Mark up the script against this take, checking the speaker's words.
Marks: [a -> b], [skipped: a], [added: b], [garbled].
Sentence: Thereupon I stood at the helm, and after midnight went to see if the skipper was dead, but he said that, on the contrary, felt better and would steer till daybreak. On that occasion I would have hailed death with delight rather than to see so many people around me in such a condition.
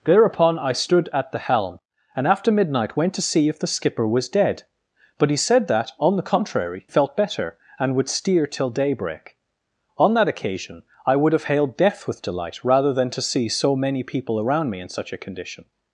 Thereupon I stood at the helm, and after midnight went to see if the skipper was dead, but he said that, on the contrary, felt better and would steer till daybreak. On that occasion I would have hailed death with delight rather than to see so many people around me in such a condition.